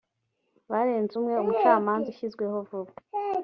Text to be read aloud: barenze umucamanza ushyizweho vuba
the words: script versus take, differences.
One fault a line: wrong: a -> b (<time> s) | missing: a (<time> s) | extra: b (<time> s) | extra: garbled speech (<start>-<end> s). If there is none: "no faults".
extra: umwe (1.2 s)